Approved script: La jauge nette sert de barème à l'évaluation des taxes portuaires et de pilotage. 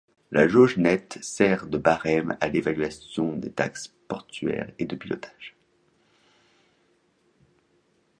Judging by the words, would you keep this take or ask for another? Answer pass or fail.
pass